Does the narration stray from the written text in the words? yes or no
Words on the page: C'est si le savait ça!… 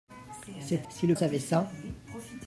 no